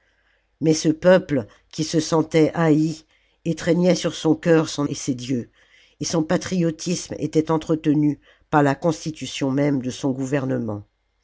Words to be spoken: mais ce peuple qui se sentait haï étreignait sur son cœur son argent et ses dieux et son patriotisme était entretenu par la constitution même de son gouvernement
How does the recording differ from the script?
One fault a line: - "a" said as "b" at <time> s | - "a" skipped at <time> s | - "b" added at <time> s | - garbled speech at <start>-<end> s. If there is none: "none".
- "argent" skipped at 4.9 s